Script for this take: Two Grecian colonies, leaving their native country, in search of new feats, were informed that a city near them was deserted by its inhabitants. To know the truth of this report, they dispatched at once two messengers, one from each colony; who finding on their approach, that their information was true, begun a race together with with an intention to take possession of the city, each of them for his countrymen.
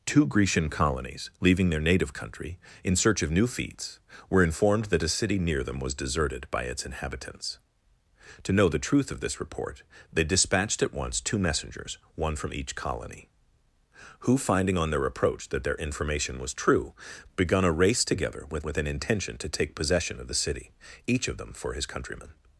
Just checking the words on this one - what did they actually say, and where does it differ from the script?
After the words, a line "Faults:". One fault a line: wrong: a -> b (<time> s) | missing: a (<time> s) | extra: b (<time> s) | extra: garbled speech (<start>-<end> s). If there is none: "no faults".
Two Grecian colonies, leaving their native country, in search of new feats, were informed that a city near them was deserted by its inhabitants. To know the truth of this report, they dispatched at once two messengers, one from each colony; who finding on their approach, that their information was true, begun a race together with with an intention to take possession of the city, each of them for his countrymen.
Faults:
no faults